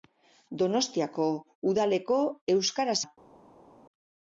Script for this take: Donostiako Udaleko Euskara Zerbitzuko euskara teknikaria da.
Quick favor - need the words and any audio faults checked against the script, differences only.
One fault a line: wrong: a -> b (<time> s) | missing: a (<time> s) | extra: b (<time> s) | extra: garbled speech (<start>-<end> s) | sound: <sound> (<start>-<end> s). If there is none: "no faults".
missing: Zerbitzuko euskara teknikaria (3.0 s)